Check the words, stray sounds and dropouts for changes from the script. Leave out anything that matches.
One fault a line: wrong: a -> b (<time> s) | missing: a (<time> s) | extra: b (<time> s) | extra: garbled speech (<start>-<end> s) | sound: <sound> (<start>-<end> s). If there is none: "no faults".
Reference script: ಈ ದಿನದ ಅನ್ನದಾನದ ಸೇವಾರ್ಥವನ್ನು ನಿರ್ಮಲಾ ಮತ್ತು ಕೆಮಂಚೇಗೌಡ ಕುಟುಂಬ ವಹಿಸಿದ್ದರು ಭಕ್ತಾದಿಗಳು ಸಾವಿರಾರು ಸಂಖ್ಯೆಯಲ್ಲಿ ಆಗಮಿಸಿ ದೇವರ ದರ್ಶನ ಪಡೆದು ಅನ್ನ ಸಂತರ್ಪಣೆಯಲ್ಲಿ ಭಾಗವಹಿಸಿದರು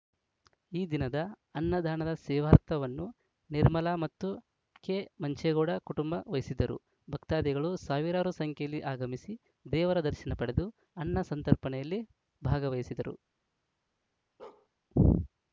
sound: bark (14.4-14.7 s)